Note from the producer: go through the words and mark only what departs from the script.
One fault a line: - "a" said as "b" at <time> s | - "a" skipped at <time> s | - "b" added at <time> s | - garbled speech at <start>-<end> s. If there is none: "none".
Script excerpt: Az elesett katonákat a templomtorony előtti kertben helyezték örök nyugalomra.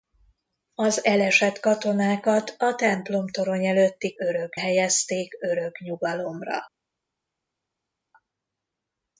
- "kertben" said as "örök" at 4.2 s